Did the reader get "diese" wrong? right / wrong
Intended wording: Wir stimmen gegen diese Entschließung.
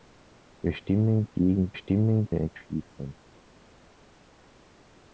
wrong